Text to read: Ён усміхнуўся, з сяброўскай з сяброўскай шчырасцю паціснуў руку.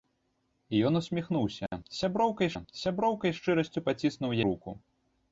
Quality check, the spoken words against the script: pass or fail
pass